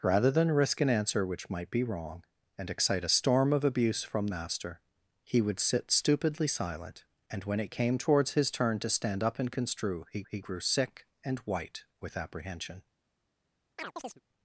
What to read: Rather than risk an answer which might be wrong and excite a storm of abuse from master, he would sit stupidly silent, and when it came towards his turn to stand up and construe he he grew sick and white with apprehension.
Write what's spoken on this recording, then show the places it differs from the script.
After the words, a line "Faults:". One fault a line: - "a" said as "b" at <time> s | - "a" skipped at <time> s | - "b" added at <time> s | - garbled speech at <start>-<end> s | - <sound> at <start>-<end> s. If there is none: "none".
Rather than risk an answer which might be wrong and excite a storm of abuse from master, he would sit stupidly silent, and when it came towards his turn to stand up and construe he he grew sick and white with apprehension.
Faults:
- chirp at 13.8-14.2 s